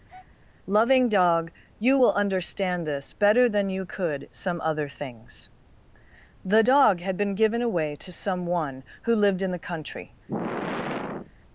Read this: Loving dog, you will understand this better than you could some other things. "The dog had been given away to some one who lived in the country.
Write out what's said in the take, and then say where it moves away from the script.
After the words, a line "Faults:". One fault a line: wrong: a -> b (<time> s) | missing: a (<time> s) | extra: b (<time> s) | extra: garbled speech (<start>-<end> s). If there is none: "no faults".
Loving dog, you will understand this better than you could some other things. "The dog had been given away to some one who lived in the country.
Faults:
no faults